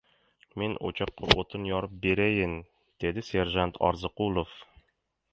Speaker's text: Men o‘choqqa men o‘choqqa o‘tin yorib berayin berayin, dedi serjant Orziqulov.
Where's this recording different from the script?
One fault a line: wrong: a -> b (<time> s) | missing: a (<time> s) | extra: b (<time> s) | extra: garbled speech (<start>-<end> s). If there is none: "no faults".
missing: men o‘choqqa (1.3 s)
missing: berayin (2.5 s)